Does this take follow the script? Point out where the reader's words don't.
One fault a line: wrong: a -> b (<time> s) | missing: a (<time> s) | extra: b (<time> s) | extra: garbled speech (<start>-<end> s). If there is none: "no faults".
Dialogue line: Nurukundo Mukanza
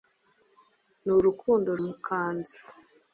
no faults